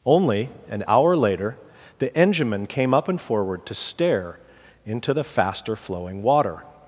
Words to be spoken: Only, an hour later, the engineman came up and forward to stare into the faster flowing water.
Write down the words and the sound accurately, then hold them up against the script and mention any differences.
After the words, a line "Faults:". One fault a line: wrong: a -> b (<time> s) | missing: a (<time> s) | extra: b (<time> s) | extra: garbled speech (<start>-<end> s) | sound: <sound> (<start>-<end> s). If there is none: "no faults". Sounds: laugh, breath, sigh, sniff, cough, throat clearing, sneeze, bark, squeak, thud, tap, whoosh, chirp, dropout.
Only, an hour later, the engineman came up and forward to stare into the faster flowing water.
Faults:
no faults